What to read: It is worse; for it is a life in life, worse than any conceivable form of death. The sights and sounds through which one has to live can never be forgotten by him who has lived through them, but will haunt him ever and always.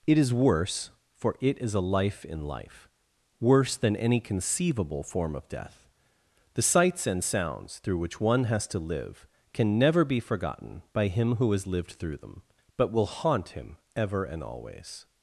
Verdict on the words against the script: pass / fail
pass